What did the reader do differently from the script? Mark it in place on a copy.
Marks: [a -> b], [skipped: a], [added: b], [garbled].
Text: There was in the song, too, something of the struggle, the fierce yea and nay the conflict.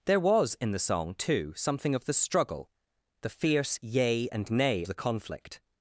There was in the song, too, something of the struggle, the fierce yea and nay the conflict.